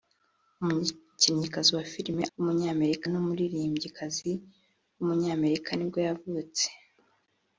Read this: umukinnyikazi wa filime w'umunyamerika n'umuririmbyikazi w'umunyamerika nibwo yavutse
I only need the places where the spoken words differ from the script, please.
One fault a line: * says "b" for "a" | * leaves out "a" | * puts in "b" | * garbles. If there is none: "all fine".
all fine